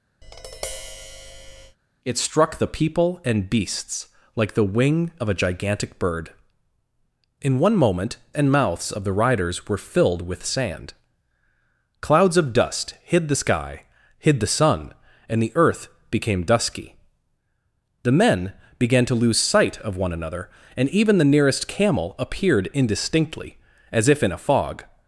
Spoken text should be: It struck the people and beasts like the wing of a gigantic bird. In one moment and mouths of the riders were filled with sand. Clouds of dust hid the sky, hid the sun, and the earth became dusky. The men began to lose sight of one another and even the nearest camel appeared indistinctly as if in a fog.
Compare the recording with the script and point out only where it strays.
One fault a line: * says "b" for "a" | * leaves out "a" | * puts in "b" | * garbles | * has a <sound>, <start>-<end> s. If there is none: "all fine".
* has a tap, 0.2-1.8 s